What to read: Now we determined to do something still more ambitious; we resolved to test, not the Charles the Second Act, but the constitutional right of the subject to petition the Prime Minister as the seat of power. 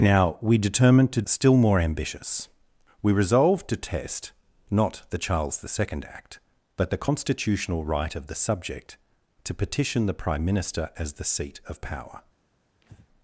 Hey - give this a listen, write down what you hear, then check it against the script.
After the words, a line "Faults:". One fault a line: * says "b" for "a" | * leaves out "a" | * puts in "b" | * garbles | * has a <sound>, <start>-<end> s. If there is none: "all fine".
Now we determined to still more ambitious; we resolved to test, not the Charles the Second Act, but the constitutional right of the subject to petition the Prime Minister as the seat of power.
Faults:
* leaves out "do something"
* has a breath, 12.8-13.1 s